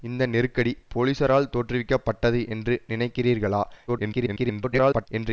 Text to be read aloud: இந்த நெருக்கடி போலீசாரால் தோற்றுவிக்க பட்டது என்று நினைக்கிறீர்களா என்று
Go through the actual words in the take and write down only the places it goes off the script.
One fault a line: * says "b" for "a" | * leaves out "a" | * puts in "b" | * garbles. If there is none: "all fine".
* garbles